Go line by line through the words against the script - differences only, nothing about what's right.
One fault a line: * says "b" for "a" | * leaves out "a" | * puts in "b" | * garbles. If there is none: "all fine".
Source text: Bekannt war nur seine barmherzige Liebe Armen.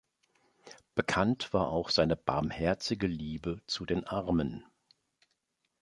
* says "auch" for "nur"
* puts in "zu den"